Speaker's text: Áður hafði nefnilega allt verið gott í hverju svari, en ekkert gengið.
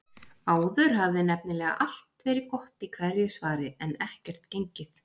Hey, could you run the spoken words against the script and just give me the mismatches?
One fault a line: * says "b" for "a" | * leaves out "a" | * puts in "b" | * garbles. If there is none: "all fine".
all fine